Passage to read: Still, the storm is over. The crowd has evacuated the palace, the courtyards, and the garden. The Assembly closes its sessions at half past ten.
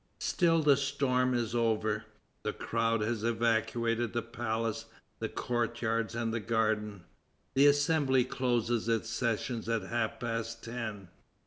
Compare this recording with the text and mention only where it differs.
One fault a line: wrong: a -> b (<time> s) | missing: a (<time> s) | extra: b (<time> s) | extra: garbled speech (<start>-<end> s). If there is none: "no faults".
no faults